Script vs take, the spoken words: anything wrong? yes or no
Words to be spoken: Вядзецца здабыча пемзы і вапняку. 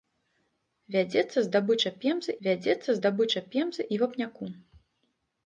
yes